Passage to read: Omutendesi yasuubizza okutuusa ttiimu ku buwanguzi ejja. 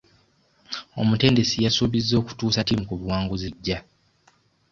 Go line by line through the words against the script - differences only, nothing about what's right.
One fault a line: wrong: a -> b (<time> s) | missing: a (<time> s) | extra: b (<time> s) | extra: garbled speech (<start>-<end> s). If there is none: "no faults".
no faults